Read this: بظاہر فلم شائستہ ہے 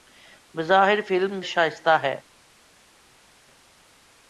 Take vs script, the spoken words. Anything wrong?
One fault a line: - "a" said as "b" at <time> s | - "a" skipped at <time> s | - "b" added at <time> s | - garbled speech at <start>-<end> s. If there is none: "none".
none